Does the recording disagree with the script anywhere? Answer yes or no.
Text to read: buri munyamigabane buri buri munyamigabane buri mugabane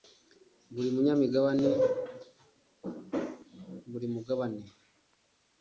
yes